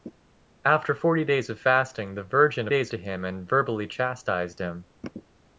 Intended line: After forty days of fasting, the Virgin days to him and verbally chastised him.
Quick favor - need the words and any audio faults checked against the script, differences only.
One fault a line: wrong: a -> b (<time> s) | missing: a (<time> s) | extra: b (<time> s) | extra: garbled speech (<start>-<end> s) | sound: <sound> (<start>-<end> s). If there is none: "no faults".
no faults